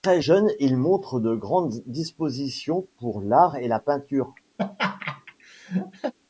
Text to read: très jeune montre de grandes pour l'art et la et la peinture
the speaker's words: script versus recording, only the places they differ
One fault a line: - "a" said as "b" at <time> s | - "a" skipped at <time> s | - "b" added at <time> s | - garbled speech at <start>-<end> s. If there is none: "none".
- "il" added at 0.6 s
- "dispositions" added at 1.9 s
- "et la" skipped at 3.8 s